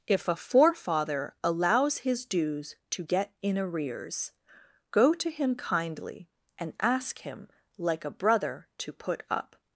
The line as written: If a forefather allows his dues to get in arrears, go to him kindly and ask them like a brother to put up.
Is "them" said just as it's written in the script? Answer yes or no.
no